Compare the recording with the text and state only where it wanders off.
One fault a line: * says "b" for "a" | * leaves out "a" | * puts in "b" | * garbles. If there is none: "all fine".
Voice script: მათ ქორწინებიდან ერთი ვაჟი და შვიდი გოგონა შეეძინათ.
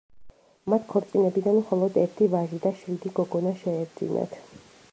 * puts in "მხოლოდ"